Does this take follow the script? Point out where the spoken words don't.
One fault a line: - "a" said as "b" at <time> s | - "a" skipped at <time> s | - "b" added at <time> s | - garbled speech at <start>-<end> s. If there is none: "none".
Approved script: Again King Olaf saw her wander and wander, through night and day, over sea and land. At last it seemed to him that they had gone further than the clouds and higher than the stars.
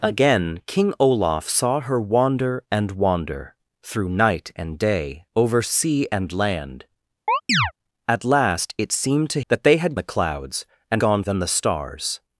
- "him" skipped at 9.4 s
- "gone further than" skipped at 9.9 s
- "higher" said as "gone" at 11.0 s